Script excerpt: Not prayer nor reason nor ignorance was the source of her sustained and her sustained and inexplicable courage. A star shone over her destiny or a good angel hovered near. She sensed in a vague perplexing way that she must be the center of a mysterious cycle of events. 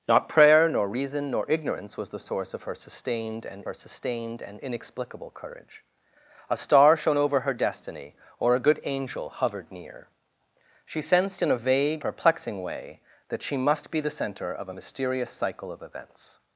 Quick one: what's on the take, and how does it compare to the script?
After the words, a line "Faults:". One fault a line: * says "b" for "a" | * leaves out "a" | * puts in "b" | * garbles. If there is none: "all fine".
Not prayer nor reason nor ignorance was the source of her sustained and her sustained and inexplicable courage. A star shone over her destiny or a good angel hovered near. She sensed in a vague perplexing way that she must be the center of a mysterious cycle of events.
Faults:
all fine